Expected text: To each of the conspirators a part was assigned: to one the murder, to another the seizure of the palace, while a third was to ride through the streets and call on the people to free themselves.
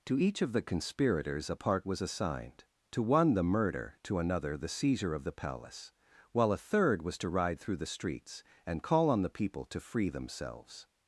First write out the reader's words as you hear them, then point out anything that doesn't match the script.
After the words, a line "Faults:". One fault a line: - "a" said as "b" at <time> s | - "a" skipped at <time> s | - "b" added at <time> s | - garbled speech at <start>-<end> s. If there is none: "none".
To each of the conspirators a part was assigned: to one the murder, to another the seizure of the palace, while a third was to ride through the streets and call on the people to free themselves.
Faults:
none